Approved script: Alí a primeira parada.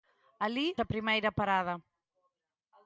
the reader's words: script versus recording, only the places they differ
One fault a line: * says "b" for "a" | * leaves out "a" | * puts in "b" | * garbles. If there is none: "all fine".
all fine